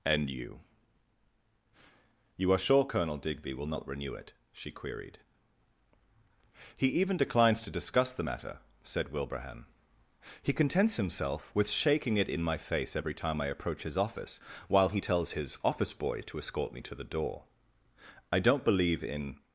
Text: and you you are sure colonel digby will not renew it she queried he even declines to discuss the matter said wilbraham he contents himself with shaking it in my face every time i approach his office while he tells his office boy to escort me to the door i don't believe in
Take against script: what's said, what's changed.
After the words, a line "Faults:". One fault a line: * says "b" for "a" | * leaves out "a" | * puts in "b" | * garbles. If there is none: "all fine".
and you you are sure colonel digby will not renew it she queried he even declines to discuss the matter said wilbraham he contents himself with shaking it in my face every time i approach his office while he tells his office boy to escort me to the door i don't believe in
Faults:
all fine